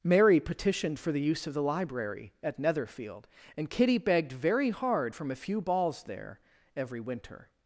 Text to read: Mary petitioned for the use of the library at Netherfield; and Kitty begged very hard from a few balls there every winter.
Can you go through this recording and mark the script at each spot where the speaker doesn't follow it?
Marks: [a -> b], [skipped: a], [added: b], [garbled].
Mary petitioned for the use of the library at Netherfield; and Kitty begged very hard from a few balls there every winter.